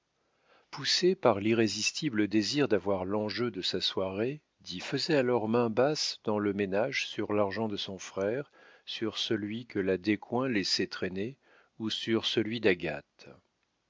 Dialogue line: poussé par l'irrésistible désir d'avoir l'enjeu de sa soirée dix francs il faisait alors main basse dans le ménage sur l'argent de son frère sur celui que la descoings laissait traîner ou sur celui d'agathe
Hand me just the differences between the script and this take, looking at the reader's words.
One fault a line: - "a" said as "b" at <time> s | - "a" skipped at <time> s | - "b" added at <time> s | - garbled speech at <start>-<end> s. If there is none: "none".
- "francs il" skipped at 4.8 s